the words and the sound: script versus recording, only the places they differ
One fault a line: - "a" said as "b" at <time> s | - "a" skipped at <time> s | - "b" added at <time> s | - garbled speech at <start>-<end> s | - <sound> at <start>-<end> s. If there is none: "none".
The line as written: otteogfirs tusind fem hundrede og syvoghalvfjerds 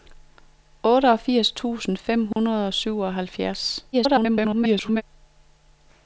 - dropout at 2.3-2.4 s
- garbled speech at 3.9-5.0 s